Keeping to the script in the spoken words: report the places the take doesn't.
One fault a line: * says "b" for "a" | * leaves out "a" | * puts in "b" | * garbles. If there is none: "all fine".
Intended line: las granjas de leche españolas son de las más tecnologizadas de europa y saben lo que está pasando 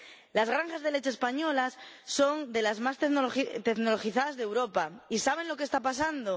all fine